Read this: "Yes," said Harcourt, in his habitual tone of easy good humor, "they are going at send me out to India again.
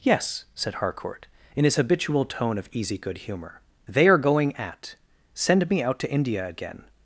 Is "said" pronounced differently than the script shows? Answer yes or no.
no